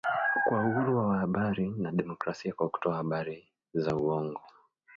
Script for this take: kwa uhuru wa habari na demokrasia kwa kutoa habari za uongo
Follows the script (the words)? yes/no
yes